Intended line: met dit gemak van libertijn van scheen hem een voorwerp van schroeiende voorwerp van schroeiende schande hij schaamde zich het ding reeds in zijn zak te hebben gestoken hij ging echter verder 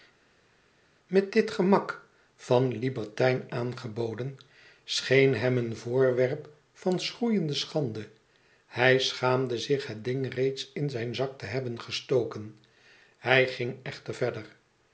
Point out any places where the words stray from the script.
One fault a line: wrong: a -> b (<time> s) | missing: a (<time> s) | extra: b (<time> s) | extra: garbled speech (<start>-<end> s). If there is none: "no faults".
wrong: van -> aangeboden (3.5 s)
missing: voorwerp van schroeiende (7.5 s)